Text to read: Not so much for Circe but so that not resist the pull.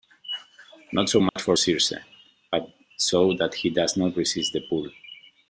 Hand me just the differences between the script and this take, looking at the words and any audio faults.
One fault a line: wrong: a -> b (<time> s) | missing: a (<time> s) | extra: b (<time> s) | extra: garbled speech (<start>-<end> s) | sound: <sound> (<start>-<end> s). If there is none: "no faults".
sound: dropout (1.3-1.4 s)
extra: he does (3.5 s)